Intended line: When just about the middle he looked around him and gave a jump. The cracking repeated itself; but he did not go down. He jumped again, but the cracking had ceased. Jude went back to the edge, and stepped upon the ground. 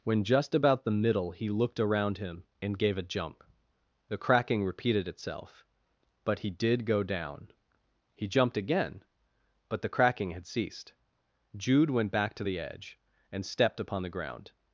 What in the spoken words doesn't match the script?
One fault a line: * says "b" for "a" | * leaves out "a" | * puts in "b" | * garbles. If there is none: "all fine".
* leaves out "not"